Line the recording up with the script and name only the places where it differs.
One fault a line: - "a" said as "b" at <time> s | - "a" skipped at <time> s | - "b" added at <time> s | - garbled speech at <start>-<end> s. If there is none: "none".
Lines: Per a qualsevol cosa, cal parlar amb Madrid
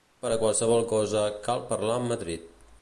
none